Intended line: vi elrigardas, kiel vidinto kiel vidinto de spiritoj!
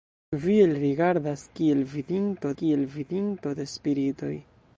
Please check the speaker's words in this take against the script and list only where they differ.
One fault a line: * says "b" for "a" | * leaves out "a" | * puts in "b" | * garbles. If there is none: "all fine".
all fine